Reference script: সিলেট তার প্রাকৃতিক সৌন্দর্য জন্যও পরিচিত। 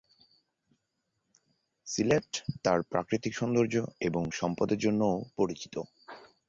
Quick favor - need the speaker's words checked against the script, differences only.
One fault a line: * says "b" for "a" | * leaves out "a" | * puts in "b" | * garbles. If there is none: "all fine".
* puts in "এবং সম্পদের"